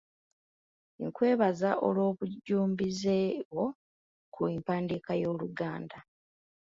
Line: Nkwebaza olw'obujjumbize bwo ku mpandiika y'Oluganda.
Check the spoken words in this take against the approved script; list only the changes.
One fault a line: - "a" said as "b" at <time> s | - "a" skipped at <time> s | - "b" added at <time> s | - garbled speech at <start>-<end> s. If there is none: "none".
none